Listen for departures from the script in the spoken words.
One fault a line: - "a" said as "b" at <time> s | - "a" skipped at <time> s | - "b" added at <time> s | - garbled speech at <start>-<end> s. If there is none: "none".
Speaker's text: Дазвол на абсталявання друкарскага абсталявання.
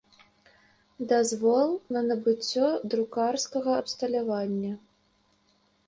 - "абсталявання" said as "набыццё" at 2.1 s